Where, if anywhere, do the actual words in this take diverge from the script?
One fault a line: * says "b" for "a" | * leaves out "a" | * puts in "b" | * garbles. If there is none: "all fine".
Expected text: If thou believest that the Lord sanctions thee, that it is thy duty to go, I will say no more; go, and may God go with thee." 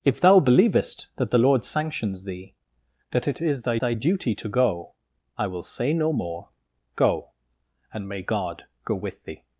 * puts in "thy"